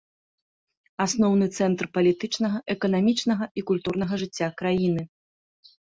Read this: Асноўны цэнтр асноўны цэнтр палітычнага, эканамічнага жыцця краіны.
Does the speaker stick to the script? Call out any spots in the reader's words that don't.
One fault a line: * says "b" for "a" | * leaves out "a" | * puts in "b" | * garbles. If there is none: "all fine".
* says "палітычнага эканамічнага і культурнага" for "асноўны цэнтр палітычнага эканамічнага"